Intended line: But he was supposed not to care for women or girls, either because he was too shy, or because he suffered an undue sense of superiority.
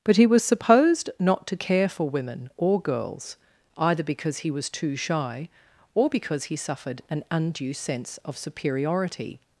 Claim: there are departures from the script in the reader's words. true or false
false